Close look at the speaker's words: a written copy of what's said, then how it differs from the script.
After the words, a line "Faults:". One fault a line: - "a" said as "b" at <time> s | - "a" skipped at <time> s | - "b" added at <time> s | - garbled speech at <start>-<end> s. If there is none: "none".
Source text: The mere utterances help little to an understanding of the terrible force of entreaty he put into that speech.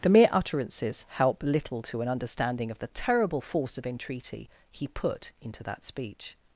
The mere utterances help little to an understanding of the terrible force of entreaty he put into that speech.
Faults:
none